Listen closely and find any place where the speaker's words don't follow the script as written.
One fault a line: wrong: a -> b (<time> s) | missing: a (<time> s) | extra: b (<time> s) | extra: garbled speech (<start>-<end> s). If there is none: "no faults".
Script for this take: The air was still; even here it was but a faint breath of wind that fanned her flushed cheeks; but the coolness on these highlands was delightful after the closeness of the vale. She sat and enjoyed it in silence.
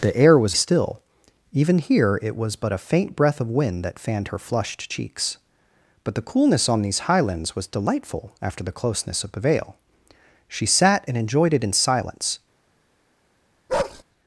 no faults